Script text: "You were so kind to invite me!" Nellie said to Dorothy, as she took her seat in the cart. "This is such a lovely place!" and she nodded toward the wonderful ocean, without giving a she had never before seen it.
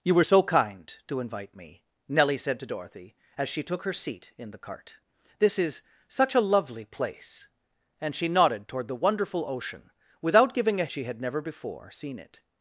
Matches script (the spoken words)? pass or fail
pass